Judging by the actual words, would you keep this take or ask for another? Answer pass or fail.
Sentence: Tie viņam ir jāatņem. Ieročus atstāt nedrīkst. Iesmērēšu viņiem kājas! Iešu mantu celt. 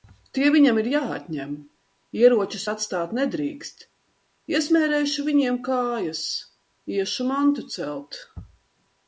pass